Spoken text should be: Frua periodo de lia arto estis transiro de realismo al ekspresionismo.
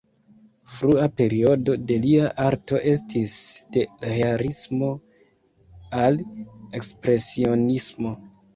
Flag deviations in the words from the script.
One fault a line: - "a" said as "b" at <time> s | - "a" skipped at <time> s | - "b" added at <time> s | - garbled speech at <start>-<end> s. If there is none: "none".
- "transiro" skipped at 3.4 s